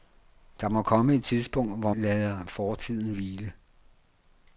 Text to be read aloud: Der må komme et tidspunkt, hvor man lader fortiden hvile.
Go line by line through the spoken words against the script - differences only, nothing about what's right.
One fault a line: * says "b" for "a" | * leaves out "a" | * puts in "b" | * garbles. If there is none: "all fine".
* leaves out "man"